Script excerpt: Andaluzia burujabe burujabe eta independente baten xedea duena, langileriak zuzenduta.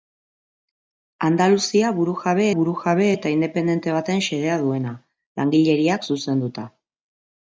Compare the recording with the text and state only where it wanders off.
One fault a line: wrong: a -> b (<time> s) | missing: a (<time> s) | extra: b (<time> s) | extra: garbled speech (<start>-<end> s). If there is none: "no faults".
no faults